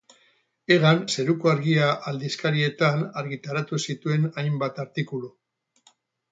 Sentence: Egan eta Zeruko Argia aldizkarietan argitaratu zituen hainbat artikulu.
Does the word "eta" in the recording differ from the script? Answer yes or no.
yes